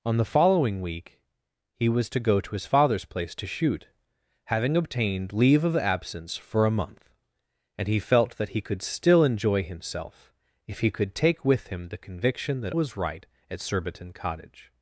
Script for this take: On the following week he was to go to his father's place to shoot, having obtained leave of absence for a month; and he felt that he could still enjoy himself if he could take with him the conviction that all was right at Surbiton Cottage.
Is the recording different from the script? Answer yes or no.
yes